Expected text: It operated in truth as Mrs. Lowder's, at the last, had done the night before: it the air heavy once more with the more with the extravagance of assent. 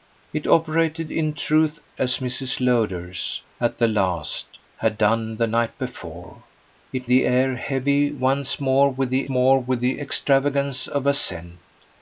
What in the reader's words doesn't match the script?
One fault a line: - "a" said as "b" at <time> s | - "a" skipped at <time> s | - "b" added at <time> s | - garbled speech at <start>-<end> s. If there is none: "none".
none